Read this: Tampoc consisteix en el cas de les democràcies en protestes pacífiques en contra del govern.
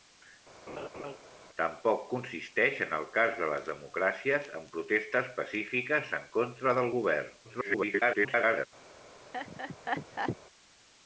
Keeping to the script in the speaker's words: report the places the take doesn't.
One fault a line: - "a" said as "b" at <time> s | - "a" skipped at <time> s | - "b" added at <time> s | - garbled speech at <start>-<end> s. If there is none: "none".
- garbled speech at 7.4-8.7 s